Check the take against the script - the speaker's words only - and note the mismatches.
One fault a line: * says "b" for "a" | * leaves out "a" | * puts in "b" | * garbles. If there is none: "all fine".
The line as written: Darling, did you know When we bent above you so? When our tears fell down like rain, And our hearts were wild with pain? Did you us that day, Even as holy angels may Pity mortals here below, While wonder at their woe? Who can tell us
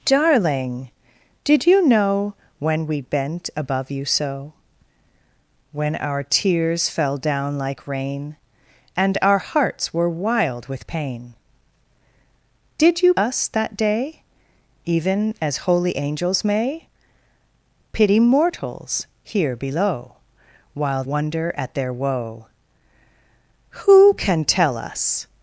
all fine